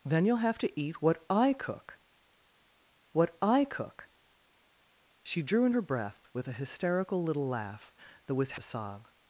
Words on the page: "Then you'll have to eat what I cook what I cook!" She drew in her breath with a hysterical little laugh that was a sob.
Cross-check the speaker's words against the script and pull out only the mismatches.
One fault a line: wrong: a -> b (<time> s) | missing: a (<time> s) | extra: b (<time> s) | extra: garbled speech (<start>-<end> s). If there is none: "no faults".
no faults